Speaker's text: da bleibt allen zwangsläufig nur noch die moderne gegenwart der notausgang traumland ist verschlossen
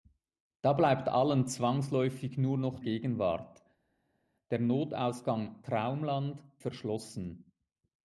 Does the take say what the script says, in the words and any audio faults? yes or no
no